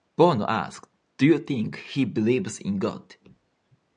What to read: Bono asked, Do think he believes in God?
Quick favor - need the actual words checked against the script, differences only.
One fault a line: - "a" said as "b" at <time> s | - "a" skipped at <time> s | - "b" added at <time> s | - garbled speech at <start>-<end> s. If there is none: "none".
- "you" added at 1.3 s